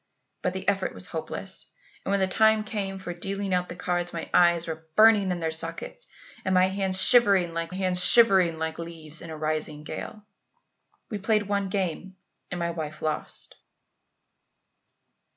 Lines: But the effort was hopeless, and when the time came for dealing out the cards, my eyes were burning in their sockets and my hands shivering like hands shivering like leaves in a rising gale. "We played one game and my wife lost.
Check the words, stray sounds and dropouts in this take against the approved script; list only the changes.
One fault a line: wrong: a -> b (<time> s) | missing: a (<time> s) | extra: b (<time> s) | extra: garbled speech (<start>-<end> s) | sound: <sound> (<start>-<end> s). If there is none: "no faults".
no faults